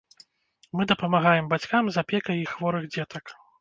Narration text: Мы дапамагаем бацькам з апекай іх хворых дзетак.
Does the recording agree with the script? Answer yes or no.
yes